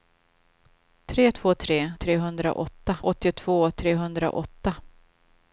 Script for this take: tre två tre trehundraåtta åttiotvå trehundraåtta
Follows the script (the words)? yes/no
yes